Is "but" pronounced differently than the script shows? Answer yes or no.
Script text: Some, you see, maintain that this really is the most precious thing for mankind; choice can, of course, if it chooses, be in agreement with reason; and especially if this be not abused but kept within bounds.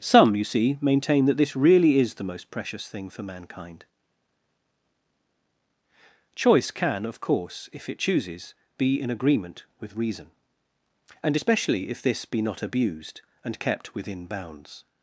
yes